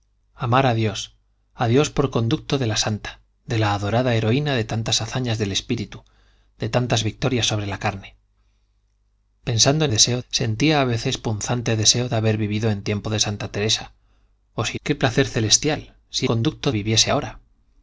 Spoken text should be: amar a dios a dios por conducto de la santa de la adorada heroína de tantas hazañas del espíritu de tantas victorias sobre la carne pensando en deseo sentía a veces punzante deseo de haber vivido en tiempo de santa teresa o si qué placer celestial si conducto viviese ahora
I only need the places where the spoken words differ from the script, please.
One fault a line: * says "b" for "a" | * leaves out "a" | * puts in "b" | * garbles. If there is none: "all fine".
all fine